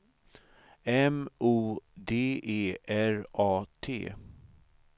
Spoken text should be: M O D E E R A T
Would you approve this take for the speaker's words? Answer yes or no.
no